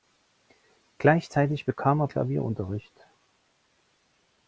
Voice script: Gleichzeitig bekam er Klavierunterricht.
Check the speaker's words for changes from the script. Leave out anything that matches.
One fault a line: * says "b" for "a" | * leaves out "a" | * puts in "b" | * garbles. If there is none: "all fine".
all fine